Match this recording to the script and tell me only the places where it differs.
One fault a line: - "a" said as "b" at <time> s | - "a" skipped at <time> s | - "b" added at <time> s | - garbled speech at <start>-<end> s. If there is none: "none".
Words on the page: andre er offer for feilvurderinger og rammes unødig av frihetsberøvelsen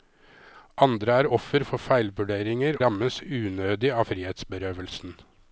- "og" skipped at 2.8 s